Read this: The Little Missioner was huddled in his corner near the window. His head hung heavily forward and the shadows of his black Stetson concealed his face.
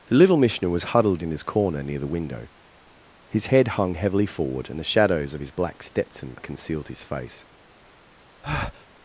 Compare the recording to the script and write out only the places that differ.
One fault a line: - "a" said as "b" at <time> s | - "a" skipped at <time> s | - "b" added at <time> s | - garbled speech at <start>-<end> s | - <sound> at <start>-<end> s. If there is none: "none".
- breath at 8.4-8.9 s